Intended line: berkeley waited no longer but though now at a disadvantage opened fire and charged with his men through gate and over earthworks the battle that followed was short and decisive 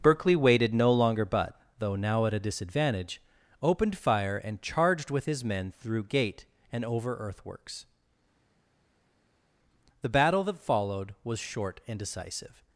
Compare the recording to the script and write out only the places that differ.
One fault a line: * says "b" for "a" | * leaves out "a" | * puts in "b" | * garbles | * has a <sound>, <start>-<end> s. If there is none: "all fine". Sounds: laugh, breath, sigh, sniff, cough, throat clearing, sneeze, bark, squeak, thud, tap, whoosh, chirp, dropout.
all fine